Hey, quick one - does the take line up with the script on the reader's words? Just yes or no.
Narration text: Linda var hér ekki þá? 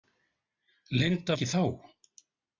no